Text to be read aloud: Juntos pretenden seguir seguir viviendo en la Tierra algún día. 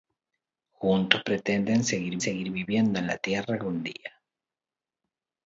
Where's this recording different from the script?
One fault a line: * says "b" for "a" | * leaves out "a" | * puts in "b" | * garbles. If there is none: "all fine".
all fine